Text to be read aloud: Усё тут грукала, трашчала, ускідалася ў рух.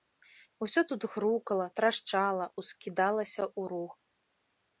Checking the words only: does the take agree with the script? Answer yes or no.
yes